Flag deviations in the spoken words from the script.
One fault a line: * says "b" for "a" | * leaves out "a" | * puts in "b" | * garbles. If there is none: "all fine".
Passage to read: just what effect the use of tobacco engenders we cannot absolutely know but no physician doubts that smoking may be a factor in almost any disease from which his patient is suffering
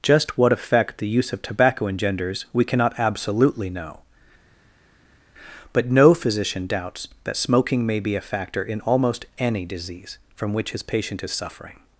all fine